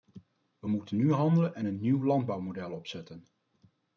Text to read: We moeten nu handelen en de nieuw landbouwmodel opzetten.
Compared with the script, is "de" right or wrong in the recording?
wrong